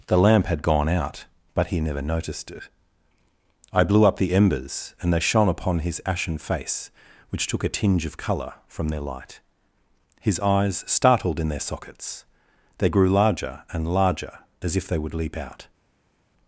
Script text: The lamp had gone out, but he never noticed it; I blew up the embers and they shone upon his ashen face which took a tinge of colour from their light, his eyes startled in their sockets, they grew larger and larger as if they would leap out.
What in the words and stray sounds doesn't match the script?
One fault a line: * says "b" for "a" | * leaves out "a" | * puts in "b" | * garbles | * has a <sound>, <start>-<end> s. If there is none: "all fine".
all fine